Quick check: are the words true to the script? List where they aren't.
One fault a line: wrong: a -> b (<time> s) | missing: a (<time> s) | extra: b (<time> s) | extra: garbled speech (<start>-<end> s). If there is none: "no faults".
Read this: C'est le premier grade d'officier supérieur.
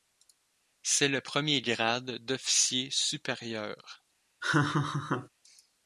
no faults